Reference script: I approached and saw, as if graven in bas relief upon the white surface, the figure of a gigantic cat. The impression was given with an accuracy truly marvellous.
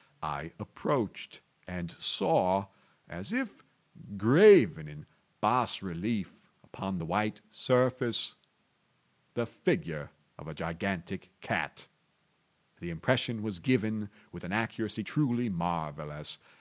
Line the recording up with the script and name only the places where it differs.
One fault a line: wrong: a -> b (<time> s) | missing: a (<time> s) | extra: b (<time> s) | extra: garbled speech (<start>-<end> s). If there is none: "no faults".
no faults